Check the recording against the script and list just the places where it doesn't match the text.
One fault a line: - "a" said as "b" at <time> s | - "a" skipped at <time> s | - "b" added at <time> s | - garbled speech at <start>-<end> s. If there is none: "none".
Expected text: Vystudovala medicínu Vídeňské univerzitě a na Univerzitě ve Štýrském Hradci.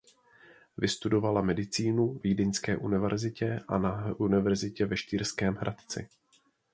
none